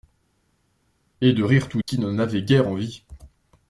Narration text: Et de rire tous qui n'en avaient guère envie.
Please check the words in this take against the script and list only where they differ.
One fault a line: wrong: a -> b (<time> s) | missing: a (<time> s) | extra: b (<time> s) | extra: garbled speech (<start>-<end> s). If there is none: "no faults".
no faults